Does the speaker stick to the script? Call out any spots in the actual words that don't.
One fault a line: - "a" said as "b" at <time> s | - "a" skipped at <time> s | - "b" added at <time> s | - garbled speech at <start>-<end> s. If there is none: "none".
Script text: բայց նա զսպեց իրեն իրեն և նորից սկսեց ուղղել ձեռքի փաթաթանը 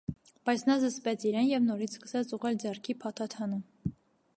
- "իրեն" skipped at 1.5 s